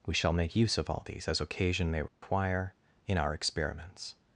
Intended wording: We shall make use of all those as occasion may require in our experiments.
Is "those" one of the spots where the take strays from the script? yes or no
yes